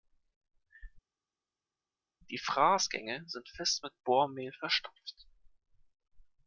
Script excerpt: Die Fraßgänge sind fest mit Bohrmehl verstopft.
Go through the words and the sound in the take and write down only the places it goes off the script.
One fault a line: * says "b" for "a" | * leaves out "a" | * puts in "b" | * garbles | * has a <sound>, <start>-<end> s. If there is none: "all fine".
all fine